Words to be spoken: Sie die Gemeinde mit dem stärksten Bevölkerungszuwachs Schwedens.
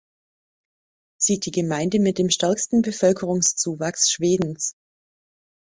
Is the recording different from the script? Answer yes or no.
no